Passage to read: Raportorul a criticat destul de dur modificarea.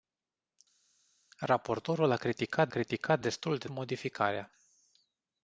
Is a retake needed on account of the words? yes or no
yes